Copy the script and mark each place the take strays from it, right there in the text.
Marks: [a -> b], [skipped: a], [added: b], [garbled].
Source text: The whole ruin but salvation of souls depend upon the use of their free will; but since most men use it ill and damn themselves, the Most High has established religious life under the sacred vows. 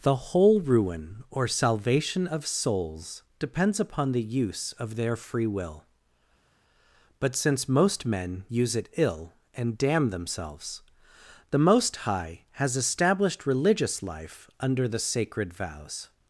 The whole ruin [but -> or] salvation of souls [depend -> depends] upon the use of their free will; but since most men use it ill and damn themselves, the Most High has established religious life under the sacred vows.